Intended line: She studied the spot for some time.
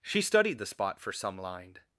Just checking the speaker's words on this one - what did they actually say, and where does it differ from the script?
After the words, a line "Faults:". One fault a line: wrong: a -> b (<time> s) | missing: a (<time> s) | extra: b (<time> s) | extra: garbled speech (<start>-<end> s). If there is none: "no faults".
She studied the spot for some lined.
Faults:
wrong: time -> lined (1.4 s)